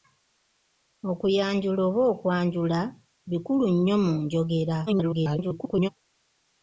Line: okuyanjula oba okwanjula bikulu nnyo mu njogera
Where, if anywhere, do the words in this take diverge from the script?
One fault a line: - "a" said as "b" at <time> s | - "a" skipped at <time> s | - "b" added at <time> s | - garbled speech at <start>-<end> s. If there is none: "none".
- garbled speech at 4.9-5.9 s